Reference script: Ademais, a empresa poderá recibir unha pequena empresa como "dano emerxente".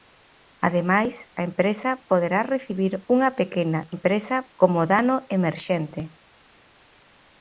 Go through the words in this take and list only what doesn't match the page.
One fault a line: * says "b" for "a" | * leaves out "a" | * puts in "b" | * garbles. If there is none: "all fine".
all fine